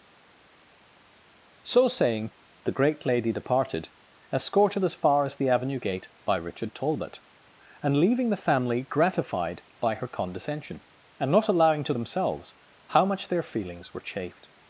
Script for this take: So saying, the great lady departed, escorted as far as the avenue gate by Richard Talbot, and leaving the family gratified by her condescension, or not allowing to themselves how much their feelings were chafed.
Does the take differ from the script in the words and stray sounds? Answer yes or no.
yes